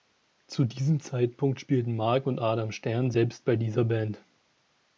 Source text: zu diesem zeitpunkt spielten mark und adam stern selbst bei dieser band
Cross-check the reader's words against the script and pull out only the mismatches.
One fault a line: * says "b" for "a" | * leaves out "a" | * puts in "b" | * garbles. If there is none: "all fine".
all fine